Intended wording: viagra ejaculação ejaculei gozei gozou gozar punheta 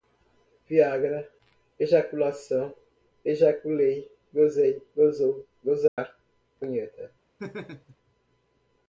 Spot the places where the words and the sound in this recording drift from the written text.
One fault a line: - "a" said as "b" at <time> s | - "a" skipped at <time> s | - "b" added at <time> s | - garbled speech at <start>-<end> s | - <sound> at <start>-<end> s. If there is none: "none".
- dropout at 5.9-6.0 s
- laugh at 7.4-8.0 s